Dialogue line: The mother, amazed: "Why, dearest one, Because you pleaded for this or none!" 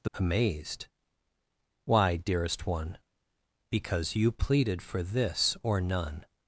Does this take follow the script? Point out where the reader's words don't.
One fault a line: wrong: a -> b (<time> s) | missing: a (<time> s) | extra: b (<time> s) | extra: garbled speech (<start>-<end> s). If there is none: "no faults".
missing: mother (0.1 s)